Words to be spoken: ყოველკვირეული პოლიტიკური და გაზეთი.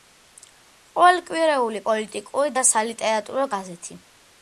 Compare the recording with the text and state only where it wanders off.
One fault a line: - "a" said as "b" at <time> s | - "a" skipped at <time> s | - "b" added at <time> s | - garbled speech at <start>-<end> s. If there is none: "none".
- "სალიტერატურო" added at 2.7 s